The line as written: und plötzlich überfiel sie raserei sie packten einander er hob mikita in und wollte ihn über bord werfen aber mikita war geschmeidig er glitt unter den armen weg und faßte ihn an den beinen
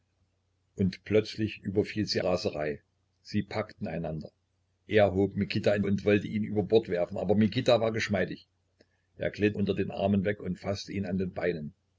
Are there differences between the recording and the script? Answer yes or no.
no